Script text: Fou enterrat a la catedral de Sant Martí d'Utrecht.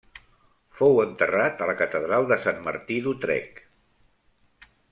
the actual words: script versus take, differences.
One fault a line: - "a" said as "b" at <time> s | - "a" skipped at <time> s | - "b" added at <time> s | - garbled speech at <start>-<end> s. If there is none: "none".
none